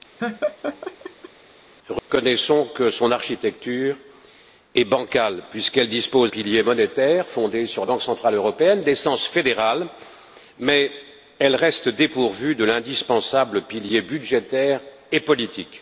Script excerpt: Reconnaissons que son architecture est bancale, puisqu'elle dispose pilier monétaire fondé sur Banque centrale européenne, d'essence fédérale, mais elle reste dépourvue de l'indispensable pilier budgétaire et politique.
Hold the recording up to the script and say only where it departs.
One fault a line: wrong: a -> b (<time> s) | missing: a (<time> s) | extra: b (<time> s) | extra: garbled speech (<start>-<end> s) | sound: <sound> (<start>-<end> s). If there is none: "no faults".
sound: laugh (0.2-1.3 s)
sound: dropout (2.0-2.1 s)